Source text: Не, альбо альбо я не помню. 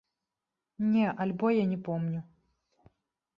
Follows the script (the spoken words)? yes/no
no